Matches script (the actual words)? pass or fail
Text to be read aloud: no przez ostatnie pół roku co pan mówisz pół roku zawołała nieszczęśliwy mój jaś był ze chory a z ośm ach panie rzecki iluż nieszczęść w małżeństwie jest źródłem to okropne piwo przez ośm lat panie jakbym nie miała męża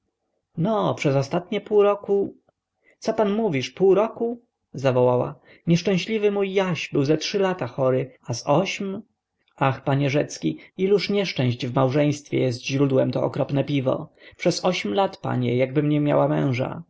fail